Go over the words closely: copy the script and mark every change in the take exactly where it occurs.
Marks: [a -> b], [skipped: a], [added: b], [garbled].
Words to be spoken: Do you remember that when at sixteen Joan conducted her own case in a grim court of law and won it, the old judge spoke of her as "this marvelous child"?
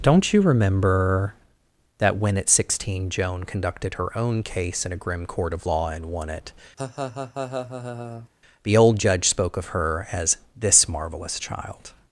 [Do -> Don't] you remember that when at sixteen Joan conducted her own case in a grim court of law and won it, the old judge spoke of her as "this marvelous child"?